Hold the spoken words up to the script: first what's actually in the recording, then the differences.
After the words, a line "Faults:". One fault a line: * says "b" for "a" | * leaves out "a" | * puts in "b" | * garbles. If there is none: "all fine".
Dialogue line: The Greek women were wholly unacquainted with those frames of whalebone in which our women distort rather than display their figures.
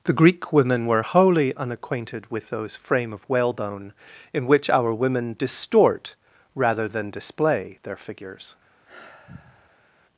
The Greek women were wholly unacquainted with those frame of whalebone in which our women distort rather than display their figures.
Faults:
* says "frame" for "frames"